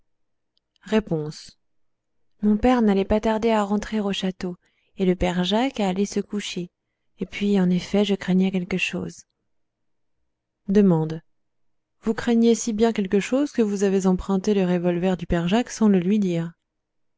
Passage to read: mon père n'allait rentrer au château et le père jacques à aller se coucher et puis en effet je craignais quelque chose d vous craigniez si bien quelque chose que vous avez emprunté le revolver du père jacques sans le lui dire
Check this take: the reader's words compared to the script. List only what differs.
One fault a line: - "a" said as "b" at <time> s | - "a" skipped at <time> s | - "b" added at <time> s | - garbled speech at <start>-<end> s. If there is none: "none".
- "pas tarder à" added at 3.0 s